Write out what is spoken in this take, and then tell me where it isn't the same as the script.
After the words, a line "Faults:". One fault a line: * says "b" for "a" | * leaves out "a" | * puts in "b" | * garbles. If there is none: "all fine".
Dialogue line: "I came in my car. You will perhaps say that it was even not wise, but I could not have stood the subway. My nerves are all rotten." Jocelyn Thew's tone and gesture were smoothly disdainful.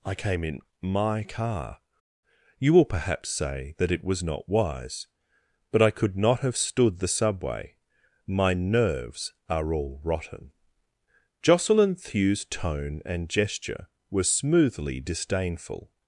"I came in my car. You will perhaps say that it was not wise, but I could not have stood the subway. My nerves are all rotten." Jocelyn Thew's tone and gesture were smoothly disdainful.
Faults:
* leaves out "even"